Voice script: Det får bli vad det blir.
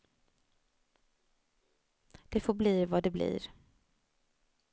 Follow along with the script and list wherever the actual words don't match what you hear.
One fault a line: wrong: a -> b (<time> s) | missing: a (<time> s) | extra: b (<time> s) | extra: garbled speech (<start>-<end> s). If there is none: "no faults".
no faults